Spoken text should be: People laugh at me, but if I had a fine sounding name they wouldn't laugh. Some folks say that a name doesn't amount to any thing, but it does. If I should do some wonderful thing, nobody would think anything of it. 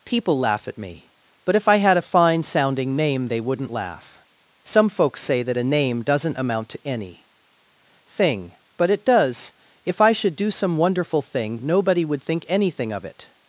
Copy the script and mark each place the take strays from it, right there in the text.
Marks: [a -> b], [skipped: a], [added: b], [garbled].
People laugh at me, but if I had a fine sounding name they wouldn't laugh. Some folks say that a name doesn't amount to any thing, but it does. If I should do some wonderful thing, nobody would think anything of it.